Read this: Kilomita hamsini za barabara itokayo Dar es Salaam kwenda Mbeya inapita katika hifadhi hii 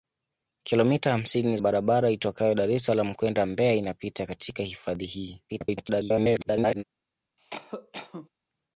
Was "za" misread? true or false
true